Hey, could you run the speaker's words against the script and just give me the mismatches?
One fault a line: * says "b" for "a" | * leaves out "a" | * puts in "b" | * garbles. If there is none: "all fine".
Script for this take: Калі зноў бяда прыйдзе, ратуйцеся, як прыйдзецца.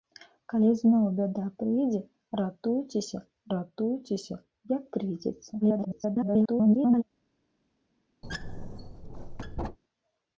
* puts in "ратуйцеся"
* garbles